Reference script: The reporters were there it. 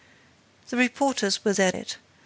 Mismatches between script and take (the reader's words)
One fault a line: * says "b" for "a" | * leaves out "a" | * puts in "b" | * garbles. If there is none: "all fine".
all fine